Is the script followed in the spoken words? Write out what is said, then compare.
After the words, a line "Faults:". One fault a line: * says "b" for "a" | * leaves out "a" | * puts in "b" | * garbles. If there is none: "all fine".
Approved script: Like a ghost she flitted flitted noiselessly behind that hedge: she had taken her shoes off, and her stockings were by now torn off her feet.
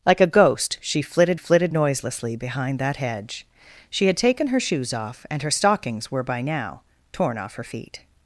Like a ghost she flitted flitted noiselessly behind that hedge: she had taken her shoes off, and her stockings were by now torn off her feet.
Faults:
all fine